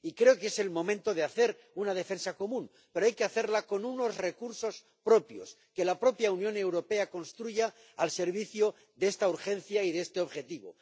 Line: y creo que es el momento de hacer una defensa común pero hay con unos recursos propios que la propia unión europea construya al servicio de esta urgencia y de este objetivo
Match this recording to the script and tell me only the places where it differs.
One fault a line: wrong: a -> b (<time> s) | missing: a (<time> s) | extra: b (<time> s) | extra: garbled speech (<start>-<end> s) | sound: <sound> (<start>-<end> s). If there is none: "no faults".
extra: que hacerla (3.1 s)